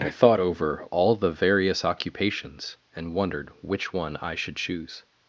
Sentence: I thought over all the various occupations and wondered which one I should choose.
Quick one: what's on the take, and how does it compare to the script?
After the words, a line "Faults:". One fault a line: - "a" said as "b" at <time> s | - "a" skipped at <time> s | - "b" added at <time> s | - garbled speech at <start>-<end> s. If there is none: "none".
I thought over all the various occupations and wondered which one I should choose.
Faults:
none